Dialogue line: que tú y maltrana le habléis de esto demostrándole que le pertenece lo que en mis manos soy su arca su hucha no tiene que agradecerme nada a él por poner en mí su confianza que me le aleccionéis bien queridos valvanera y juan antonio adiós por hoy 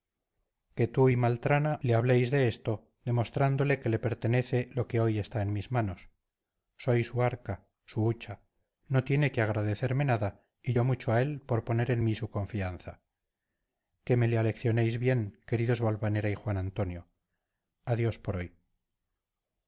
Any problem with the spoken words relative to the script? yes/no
yes